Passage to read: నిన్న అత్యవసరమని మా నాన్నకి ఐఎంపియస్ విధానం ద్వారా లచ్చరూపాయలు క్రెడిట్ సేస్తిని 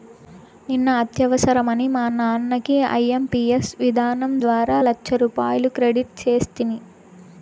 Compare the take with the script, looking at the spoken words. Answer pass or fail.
pass